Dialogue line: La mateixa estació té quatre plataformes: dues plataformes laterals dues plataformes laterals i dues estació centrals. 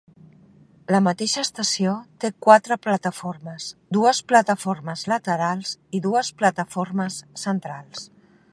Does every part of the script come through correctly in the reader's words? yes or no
no